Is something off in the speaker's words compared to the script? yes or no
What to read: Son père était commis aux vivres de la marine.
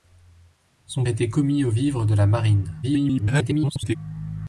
yes